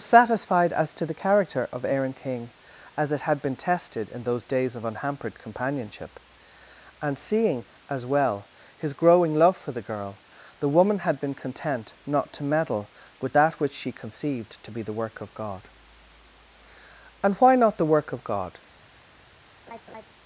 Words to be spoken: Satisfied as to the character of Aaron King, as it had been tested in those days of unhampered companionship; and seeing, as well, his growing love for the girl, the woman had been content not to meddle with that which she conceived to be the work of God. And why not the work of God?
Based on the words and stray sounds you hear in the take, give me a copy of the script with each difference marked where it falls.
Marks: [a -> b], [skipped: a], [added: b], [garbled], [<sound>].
Satisfied as to the character of Aaron King, as it had been tested in those days of unhampered companionship; and seeing, as well, his growing love for the girl, the woman had been content not to meddle with that which she conceived to be the work of God. And why not the work of God? [laugh]